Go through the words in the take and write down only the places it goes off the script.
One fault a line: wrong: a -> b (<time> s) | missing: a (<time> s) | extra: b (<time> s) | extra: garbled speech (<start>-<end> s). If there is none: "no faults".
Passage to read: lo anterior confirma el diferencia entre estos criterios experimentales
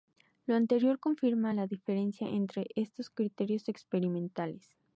wrong: el -> la (1.5 s)